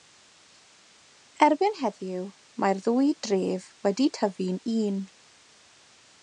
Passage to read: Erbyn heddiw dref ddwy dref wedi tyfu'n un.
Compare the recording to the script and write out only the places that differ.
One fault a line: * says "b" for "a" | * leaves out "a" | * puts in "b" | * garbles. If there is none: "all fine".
* says "mae'r" for "dref"